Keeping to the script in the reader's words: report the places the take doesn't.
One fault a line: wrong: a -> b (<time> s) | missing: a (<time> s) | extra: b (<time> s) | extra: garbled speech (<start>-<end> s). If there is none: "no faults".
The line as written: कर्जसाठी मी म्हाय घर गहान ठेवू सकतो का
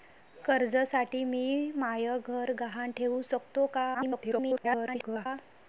extra: garbled speech (3.9-5.3 s)